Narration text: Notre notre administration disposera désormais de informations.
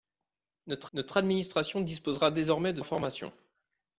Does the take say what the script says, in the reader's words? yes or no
yes